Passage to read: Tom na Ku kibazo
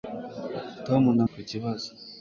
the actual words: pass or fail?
pass